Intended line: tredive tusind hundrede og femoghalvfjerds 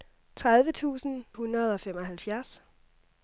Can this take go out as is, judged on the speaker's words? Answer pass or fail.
pass